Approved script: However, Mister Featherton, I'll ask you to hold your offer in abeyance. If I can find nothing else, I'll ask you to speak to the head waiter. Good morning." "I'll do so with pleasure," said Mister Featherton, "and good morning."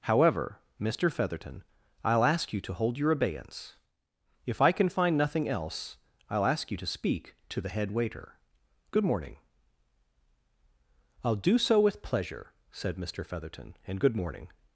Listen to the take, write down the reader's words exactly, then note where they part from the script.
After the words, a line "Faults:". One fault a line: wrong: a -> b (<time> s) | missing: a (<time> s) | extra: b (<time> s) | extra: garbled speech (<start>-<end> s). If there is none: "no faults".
However, Mister Featherton, I'll ask you to hold your abeyance. If I can find nothing else, I'll ask you to speak to the head waiter. Good morning." "I'll do so with pleasure," said Mister Featherton, "and good morning."
Faults:
missing: offer in (3.1 s)